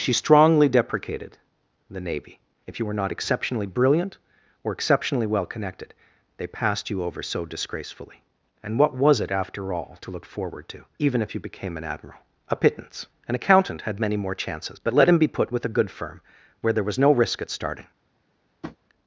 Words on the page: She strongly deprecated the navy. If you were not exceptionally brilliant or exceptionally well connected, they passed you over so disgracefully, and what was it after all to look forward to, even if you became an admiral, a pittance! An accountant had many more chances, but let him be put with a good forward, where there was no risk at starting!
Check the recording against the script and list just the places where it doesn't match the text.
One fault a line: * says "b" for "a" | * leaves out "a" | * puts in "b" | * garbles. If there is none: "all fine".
* says "firm" for "forward"